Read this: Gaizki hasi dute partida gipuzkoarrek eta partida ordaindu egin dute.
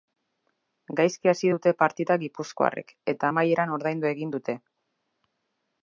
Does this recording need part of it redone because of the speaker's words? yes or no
yes